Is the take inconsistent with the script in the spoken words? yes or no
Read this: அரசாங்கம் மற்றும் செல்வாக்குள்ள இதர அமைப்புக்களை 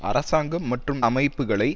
yes